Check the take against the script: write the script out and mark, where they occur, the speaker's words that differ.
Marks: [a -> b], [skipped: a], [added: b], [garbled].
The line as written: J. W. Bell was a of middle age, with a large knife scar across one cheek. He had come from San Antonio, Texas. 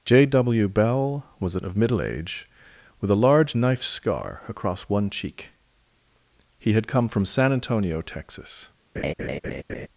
J. W. Bell was a of middle age, with a large knife scar across one cheek. He had come from San Antonio, Texas.